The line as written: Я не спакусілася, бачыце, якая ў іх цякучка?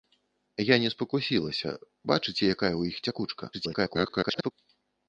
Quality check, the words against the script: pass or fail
fail